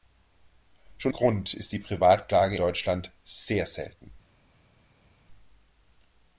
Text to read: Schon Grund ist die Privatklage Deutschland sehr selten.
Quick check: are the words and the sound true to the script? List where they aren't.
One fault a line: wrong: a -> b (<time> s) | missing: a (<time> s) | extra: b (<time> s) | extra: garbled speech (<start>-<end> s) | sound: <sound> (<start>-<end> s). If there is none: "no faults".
no faults